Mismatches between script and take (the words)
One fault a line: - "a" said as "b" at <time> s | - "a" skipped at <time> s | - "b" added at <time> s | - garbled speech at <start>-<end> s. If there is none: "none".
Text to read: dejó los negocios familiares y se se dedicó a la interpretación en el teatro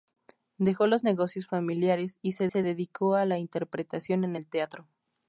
none